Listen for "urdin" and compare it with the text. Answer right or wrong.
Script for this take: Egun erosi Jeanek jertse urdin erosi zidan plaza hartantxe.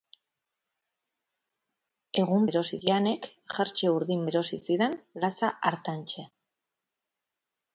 right